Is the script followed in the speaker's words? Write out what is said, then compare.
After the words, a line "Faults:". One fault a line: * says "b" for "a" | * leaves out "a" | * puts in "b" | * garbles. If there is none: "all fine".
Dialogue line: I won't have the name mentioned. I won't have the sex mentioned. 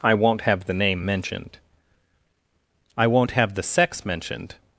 I won't have the name mentioned. I won't have the sex mentioned.
Faults:
all fine